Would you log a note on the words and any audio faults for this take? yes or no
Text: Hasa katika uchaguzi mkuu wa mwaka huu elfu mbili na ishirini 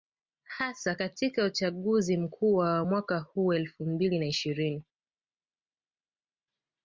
no